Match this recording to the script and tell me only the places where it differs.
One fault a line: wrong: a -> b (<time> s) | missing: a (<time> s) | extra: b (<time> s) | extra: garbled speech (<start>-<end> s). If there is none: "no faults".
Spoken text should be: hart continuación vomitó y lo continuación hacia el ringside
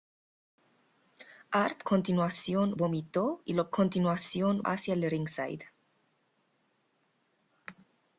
no faults